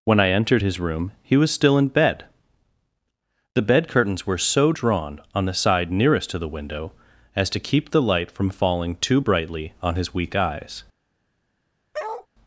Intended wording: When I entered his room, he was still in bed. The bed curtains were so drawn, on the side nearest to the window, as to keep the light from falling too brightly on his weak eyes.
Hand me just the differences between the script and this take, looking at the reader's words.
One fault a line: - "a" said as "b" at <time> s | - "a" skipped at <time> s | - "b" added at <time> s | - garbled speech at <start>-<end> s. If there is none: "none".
none